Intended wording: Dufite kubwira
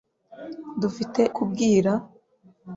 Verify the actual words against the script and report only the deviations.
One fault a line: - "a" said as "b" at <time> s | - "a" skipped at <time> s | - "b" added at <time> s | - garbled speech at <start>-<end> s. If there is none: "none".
none